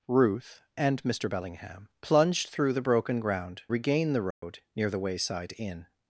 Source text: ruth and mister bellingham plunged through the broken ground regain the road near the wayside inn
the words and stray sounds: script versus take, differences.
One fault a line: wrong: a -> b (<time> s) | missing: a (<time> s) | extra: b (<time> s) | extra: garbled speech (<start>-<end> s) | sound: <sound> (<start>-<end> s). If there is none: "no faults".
sound: dropout (4.3-4.4 s)